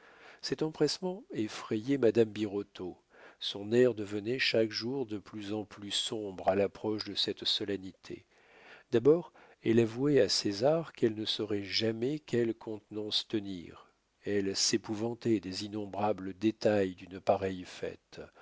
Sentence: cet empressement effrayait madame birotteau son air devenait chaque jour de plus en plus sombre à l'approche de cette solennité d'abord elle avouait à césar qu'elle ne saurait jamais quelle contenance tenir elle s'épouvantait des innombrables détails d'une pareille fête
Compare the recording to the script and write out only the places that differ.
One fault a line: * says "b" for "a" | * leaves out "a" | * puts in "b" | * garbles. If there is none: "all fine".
all fine